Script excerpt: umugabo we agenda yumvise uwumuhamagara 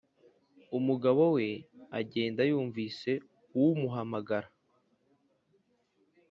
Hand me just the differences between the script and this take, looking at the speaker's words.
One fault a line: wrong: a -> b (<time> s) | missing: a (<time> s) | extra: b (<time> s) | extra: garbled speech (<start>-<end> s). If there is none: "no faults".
no faults